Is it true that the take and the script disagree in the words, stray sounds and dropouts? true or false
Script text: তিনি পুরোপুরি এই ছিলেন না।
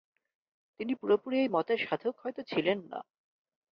true